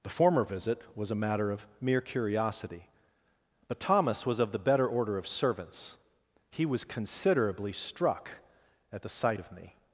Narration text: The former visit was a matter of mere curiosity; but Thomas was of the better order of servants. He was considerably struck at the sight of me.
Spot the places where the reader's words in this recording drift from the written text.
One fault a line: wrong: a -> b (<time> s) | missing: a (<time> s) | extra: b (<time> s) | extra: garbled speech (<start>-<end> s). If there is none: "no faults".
no faults